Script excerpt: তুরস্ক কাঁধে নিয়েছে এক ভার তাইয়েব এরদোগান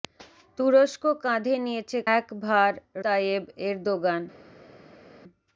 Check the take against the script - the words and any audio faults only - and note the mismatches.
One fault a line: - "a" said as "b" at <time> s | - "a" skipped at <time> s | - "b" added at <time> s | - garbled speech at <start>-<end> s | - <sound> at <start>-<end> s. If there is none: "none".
none